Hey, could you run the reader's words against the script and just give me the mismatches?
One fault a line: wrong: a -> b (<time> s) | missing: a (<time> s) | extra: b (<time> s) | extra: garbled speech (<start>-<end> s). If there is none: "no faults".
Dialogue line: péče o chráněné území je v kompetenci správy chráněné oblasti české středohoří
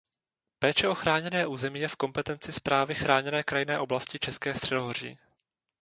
extra: krajinné (3.4 s)